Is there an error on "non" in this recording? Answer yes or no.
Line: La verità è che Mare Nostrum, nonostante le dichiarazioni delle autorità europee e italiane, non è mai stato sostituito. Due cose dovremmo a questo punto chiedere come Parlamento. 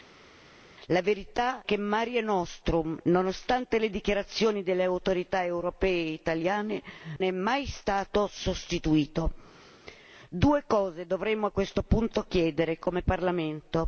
yes